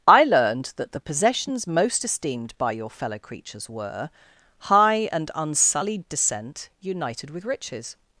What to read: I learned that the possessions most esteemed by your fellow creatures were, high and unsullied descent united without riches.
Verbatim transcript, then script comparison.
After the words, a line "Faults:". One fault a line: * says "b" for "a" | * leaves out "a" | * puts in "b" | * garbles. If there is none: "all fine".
I learned that the possessions most esteemed by your fellow creatures were, high and unsullied descent united with riches.
Faults:
* says "with" for "without"